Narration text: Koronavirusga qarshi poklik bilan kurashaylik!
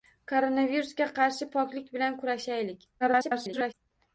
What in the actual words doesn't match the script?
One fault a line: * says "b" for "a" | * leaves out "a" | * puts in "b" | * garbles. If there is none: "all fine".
* garbles